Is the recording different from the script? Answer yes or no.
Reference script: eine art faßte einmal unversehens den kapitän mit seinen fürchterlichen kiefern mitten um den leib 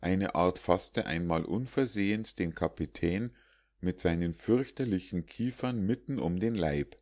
no